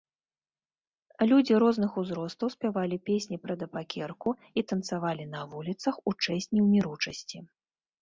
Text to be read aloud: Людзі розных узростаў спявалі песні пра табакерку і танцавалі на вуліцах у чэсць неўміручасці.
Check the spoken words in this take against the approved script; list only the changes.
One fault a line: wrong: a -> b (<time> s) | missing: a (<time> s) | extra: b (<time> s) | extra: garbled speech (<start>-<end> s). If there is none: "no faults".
no faults